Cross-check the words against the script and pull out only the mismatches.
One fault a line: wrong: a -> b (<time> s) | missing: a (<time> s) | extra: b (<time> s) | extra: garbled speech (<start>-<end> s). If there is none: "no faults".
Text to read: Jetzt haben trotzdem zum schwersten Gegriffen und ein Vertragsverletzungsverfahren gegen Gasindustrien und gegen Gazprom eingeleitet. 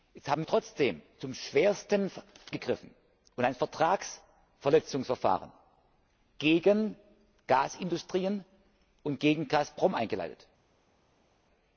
no faults